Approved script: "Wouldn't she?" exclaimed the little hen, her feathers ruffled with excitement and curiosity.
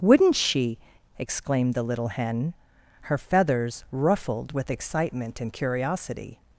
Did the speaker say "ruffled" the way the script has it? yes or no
yes